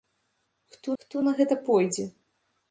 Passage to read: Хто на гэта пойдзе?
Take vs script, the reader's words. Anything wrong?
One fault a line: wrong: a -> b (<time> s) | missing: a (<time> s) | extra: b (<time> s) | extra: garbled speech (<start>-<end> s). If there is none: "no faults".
extra: хто (1.0 s)